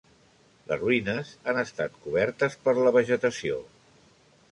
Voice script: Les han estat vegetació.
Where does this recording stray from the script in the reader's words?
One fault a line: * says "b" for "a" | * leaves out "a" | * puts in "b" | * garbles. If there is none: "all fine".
* puts in "ruïnes"
* puts in "cobertes per la"